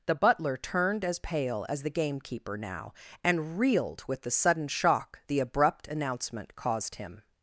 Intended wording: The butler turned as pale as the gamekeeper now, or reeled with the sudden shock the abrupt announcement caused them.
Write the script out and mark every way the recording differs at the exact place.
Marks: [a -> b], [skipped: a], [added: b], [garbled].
The butler turned as pale as the gamekeeper now, [or -> and] reeled with the sudden shock the abrupt announcement caused [them. -> him]